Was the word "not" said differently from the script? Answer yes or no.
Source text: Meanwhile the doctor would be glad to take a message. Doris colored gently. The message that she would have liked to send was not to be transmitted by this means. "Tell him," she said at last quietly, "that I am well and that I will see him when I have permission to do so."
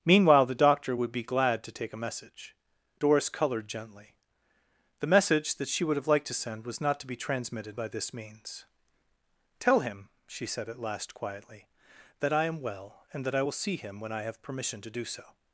no